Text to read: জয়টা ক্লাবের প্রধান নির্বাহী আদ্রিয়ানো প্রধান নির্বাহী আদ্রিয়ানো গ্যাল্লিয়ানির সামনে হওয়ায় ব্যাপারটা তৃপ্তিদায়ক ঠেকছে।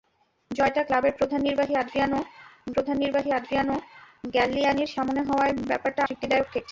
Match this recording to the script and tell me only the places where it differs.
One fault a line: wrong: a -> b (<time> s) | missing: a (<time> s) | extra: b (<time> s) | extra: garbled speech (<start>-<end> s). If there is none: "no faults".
no faults